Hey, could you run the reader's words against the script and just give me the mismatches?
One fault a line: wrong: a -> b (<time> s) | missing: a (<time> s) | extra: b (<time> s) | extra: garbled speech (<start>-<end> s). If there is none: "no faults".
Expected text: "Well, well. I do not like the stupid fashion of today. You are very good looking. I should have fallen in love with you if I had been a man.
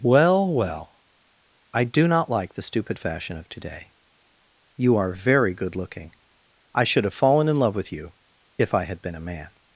no faults